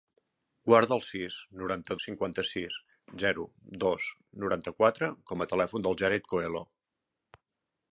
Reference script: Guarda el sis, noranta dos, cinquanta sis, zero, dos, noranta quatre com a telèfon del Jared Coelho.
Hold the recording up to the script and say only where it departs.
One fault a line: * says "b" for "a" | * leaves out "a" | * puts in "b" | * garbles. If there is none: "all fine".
* leaves out "dos"